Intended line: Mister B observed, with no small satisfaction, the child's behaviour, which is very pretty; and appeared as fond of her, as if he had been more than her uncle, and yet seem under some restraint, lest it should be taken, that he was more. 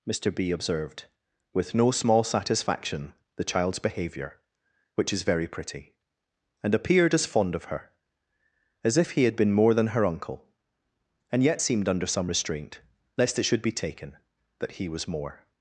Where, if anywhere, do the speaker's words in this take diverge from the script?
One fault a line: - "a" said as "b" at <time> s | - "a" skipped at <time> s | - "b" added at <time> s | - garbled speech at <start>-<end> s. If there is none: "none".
- "seem" said as "seemed" at 11.6 s